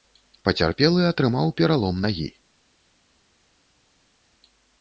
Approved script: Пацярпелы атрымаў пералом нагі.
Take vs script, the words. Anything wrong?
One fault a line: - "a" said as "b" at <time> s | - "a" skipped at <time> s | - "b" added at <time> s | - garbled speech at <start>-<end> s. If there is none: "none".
none